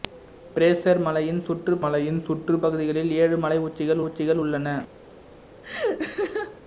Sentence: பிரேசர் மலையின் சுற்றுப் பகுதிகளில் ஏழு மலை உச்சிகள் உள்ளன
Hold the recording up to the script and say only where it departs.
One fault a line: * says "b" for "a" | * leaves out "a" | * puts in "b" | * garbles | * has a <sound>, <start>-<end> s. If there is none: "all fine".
* puts in "மலையின் சுற்றுப்"
* puts in "உச்சிகள்"
* has a laugh, 5.6-6.6 s